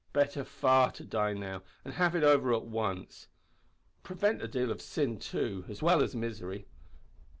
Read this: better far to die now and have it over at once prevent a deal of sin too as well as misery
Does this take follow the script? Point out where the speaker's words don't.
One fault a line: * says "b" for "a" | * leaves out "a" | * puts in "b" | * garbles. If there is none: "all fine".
all fine